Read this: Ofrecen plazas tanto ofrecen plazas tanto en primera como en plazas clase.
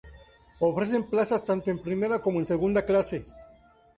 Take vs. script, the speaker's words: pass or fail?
fail